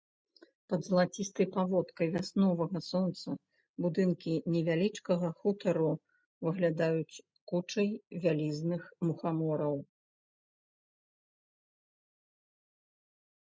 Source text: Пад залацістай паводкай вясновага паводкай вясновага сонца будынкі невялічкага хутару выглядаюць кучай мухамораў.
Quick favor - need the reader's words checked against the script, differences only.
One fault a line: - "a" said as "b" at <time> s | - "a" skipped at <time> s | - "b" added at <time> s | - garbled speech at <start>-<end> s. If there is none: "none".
- "паводкай вясновага" skipped at 2.8 s
- "вялізных" added at 8.3 s